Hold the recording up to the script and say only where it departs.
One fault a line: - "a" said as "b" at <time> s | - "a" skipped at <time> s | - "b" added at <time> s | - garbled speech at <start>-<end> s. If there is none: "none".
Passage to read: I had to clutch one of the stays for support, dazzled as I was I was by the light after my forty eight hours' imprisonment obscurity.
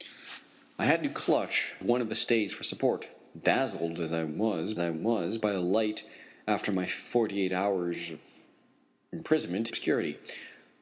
none